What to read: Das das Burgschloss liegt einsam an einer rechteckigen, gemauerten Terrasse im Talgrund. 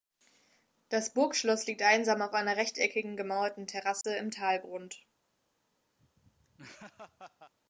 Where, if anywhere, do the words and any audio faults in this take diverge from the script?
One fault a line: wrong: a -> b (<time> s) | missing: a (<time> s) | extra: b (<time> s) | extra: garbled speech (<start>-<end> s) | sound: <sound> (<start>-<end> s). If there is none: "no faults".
missing: das (1.1 s)
wrong: an -> auf (2.2 s)
sound: dropout (4.0-4.0 s)
sound: laugh (6.0-7.5 s)